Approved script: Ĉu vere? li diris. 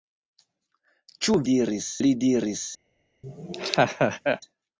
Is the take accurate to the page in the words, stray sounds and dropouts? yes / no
no